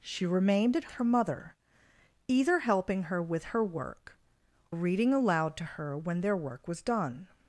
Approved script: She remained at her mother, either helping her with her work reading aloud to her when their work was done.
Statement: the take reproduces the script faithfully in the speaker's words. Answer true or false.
true